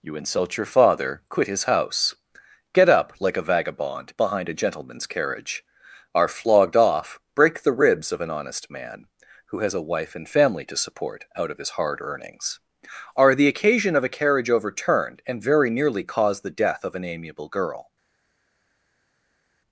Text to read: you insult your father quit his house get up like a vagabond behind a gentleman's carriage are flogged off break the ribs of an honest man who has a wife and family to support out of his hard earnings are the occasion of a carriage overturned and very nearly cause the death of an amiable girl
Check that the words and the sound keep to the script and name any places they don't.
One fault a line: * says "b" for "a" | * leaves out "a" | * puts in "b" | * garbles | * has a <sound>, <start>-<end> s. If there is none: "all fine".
all fine